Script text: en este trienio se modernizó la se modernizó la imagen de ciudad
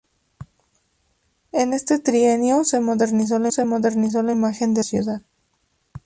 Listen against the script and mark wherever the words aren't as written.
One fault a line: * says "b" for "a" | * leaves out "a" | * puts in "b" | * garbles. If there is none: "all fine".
all fine